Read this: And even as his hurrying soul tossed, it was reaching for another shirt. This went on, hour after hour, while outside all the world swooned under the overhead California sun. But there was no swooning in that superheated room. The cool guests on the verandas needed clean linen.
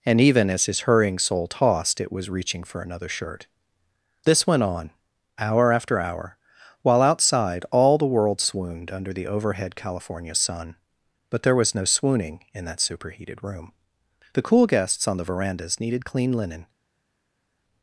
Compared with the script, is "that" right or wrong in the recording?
right